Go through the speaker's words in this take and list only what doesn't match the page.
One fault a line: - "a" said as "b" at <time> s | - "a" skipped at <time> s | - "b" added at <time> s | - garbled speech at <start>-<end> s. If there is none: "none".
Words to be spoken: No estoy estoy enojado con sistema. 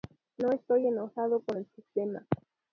- "estoy" skipped at 0.9 s
- "el" added at 1.5 s